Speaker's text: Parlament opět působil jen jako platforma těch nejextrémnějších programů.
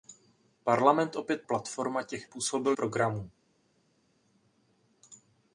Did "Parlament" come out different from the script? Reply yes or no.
no